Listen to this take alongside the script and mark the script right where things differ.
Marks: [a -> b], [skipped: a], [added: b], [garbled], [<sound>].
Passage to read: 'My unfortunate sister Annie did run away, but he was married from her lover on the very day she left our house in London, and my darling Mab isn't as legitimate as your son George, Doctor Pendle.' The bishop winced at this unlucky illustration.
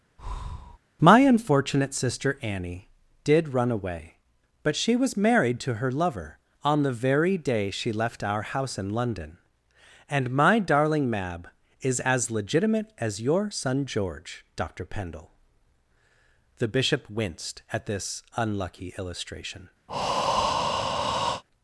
[breath] 'My unfortunate sister Annie did run away, but [he -> she] was married [from -> to] her lover on the very day she left our house in London, and my darling Mab [isn't -> is] as legitimate as your son George, Doctor Pendle.' The bishop winced at this unlucky illustration. [breath]